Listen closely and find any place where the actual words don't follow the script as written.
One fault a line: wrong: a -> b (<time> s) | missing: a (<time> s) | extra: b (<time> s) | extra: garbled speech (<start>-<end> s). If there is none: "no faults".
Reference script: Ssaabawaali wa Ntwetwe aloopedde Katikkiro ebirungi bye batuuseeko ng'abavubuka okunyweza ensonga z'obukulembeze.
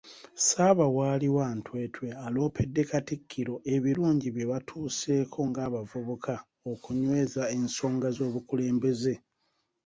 no faults